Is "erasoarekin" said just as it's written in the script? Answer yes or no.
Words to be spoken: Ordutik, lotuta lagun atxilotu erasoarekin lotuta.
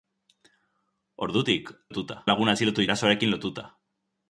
yes